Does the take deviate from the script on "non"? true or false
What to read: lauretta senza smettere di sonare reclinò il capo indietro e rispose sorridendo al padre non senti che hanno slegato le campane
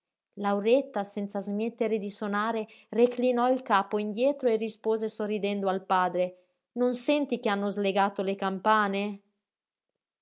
false